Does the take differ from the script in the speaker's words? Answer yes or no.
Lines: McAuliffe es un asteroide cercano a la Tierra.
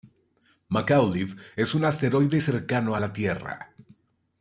no